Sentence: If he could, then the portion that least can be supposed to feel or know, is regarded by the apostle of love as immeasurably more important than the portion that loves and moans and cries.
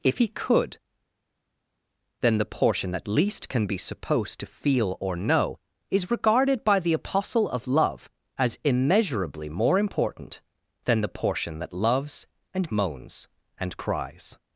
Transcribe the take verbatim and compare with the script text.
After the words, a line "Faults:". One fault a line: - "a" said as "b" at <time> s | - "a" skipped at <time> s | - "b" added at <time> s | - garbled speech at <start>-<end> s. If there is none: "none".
If he could, then the portion that least can be supposed to feel or know, is regarded by the apostle of love as immeasurably more important than the portion that loves and moans and cries.
Faults:
none